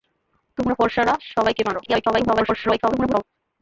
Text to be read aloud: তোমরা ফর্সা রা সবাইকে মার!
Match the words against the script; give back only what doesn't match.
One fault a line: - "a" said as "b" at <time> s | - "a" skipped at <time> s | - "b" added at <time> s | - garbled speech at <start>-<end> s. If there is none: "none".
- garbled speech at 1.8-3.2 s